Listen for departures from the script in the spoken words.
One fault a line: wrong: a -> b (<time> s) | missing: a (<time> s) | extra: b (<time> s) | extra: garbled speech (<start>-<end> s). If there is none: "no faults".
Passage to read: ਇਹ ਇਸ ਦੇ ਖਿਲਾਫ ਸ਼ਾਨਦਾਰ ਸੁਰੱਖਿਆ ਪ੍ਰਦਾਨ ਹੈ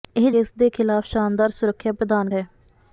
no faults